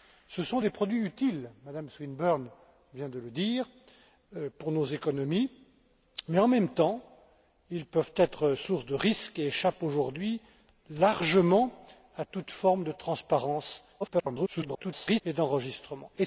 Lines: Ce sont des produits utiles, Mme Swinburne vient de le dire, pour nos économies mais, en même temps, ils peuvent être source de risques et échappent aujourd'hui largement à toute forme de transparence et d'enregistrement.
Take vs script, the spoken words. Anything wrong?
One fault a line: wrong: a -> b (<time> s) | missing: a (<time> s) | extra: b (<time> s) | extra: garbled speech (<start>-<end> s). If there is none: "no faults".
extra: garbled speech (14.0-15.2 s)